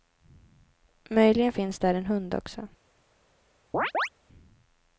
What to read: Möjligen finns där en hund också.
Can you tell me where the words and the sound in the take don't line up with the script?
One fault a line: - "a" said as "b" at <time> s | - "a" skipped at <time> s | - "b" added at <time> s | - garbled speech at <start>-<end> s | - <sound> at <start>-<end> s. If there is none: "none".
- chirp at 3.7-4.1 s